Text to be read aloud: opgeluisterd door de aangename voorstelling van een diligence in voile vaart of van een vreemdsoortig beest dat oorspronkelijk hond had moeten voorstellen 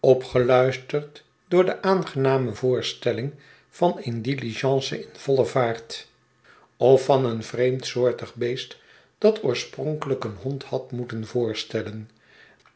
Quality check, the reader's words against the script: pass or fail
fail